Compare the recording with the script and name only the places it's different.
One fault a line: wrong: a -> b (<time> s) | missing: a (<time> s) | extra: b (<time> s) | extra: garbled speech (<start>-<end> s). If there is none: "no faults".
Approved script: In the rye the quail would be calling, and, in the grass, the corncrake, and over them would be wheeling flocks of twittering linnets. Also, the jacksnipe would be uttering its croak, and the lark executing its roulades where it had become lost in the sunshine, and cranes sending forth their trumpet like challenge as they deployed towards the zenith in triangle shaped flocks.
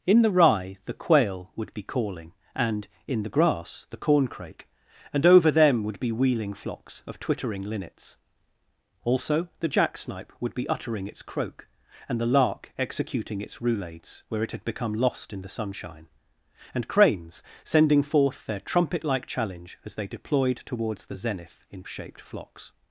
missing: triangle (21.8 s)